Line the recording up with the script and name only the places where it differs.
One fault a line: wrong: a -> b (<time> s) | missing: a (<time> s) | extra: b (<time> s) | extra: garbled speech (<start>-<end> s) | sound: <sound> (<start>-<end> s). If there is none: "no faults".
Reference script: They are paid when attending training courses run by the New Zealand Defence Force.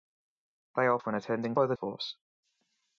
missing: paid (1.0 s)
missing: training courses run (1.5 s)
missing: New Zealand Defence (1.8 s)